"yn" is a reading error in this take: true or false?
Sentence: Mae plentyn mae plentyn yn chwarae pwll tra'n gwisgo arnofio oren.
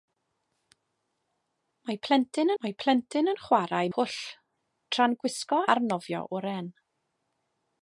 false